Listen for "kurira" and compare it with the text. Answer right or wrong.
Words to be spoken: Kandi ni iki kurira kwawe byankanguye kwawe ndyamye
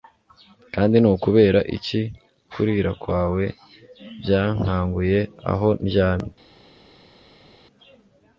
right